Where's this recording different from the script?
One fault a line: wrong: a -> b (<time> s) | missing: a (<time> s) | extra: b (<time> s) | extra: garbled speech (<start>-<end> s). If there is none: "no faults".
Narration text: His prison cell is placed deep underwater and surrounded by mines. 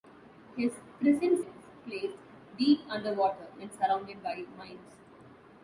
missing: cell (1.4 s)